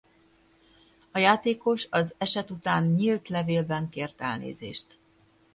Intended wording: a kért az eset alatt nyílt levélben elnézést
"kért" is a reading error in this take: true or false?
true